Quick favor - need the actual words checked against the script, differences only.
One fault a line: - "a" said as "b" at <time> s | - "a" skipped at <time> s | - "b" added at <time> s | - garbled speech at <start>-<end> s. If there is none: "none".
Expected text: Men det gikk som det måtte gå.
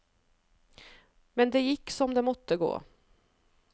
none